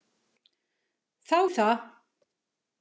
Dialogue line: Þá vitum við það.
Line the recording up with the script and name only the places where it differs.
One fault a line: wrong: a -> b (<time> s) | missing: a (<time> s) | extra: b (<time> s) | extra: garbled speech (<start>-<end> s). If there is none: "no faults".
missing: vitum (1.4 s)